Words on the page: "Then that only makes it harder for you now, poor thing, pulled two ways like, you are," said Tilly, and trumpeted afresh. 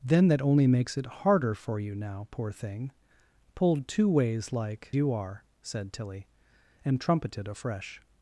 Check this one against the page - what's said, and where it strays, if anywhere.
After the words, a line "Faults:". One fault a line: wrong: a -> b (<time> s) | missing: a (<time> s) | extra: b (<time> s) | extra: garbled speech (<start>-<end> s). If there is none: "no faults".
"Then that only makes it harder for you now, poor thing, pulled two ways like, you are," said Tilly, and trumpeted afresh.
Faults:
no faults